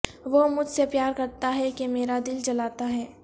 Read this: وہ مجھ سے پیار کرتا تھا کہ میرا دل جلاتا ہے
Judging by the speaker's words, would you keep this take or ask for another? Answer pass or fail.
fail